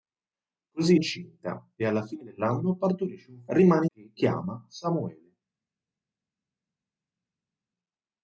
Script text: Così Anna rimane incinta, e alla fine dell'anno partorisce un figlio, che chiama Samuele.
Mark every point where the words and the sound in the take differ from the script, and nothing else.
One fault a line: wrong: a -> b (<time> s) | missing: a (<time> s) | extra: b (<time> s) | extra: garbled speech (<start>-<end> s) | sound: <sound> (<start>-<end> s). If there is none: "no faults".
missing: Anna rimane (1.0 s)
wrong: figlio -> rimane (3.5 s)